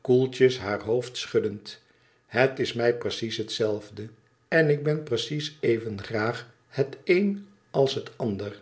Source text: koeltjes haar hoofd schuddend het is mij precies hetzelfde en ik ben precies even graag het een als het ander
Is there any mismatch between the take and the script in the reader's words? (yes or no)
no